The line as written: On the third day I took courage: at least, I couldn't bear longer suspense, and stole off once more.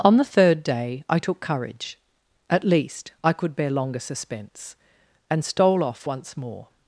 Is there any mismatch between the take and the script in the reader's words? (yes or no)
yes